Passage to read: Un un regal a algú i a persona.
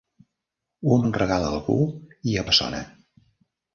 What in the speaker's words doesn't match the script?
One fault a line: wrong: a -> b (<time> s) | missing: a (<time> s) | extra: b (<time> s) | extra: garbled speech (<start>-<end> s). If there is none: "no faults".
no faults